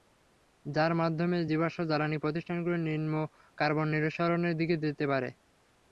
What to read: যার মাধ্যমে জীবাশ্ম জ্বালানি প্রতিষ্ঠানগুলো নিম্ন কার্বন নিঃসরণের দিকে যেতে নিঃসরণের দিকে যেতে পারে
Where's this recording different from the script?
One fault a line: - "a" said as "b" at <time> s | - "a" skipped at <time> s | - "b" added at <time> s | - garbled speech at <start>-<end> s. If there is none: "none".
- "নিঃসরণের দিকে যেতে" skipped at 5.0 s